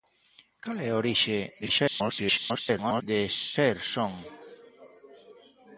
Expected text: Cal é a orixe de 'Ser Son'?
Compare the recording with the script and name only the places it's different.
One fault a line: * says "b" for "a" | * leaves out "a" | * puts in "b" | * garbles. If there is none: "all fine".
* garbles